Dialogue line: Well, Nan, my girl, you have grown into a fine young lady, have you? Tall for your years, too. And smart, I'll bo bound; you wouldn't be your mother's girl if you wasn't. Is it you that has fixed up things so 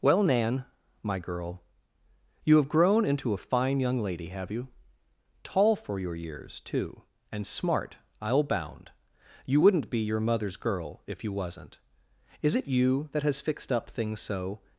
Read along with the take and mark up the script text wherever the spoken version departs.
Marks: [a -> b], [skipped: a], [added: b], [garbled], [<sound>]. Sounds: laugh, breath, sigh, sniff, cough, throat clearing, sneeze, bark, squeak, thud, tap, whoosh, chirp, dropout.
Well, Nan, my girl, you have grown into a fine young lady, have you? Tall for your years, too. And smart, I'll [skipped: bo] bound; you wouldn't be your mother's girl if you wasn't. Is it you that has fixed up things so